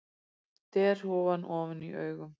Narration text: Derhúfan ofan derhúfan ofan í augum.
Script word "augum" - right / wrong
right